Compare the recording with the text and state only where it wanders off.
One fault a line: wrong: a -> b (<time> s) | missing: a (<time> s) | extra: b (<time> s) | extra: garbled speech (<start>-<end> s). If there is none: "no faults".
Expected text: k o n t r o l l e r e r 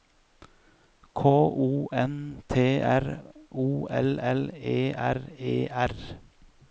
no faults